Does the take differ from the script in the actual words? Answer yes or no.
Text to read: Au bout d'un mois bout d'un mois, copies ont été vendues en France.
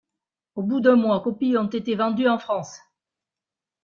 yes